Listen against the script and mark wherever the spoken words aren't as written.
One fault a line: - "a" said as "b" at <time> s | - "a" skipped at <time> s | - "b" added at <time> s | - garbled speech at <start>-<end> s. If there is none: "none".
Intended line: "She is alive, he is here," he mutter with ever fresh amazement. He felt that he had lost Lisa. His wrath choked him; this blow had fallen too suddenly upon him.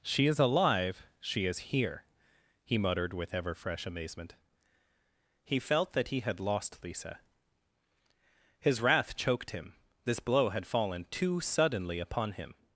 - "he" said as "she" at 1.2 s
- "mutter" said as "muttered" at 2.8 s